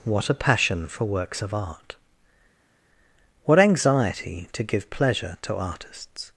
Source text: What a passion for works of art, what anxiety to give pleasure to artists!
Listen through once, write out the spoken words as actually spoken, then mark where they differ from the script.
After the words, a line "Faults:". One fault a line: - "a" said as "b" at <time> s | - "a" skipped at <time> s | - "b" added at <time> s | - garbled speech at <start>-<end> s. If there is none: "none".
What a passion for works of art, what anxiety to give pleasure to artists!
Faults:
none